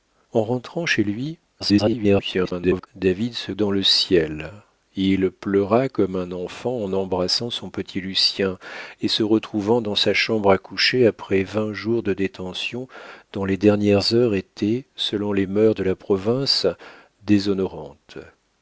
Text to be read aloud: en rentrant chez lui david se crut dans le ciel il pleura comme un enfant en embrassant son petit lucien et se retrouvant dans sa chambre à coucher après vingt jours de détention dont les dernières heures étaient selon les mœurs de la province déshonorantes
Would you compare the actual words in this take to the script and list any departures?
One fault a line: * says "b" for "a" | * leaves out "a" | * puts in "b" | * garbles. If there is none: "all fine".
* garbles
* leaves out "crut"